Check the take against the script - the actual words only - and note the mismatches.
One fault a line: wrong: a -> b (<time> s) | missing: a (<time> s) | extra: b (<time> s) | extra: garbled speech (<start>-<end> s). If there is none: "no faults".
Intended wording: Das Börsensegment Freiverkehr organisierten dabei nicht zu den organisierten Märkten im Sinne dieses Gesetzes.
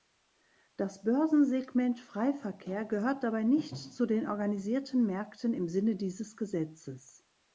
wrong: organisierten -> gehört (2.9 s)